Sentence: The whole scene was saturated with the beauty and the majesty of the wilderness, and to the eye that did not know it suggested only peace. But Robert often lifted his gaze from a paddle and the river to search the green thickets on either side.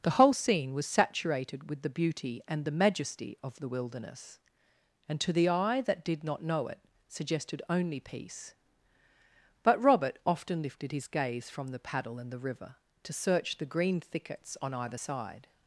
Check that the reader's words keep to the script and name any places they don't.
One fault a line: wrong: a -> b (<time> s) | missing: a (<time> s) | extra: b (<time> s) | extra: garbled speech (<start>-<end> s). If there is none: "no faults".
wrong: a -> the (11.7 s)